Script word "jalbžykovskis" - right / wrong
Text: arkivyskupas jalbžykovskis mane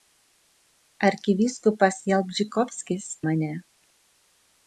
right